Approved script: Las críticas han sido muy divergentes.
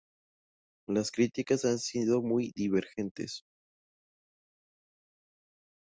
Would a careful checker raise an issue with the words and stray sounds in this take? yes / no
no